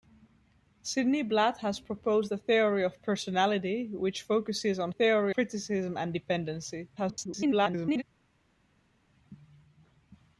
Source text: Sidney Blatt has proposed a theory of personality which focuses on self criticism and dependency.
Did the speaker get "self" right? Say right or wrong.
wrong